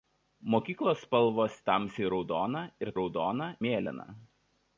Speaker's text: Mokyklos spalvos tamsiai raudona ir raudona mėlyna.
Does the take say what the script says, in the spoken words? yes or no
yes